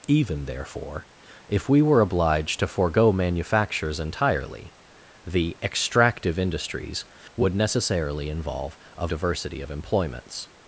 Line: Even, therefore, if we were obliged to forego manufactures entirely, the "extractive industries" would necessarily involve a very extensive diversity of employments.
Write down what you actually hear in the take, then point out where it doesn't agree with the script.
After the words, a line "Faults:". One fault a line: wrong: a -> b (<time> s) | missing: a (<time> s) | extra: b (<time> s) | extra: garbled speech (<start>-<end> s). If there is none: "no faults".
Even, therefore, if we were obliged to forego manufactures entirely, the "extractive industries" would necessarily involve a diversity of employments.
Faults:
missing: very extensive (9.1 s)